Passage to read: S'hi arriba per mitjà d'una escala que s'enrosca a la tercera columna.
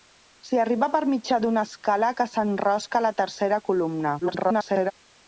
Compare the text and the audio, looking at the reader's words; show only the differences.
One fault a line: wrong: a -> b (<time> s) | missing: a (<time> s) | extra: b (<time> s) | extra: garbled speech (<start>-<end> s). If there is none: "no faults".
extra: garbled speech (4.2-4.9 s)